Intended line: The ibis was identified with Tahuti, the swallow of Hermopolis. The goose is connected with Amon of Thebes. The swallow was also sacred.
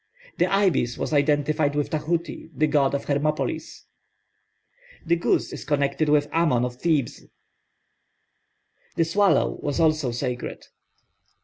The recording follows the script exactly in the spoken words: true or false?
false